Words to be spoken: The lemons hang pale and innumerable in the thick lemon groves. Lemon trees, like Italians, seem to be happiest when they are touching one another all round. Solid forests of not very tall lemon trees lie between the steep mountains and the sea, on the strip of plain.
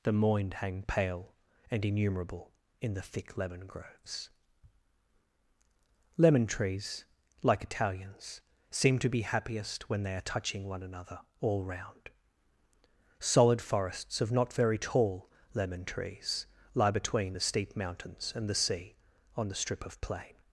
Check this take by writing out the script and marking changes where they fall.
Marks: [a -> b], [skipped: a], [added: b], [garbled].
The [lemons -> moind] hang pale and innumerable in the thick lemon groves. Lemon trees, like Italians, seem to be happiest when they are touching one another all round. Solid forests of not very tall lemon trees lie between the steep mountains and the sea, on the strip of plain.